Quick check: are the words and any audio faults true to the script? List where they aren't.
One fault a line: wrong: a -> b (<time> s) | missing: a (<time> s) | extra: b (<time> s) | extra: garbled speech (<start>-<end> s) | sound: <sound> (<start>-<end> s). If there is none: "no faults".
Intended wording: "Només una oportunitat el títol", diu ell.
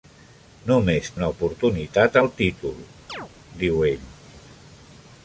sound: chirp (3.1-3.3 s)